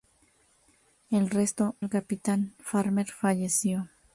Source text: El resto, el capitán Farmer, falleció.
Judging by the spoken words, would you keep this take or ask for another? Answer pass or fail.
pass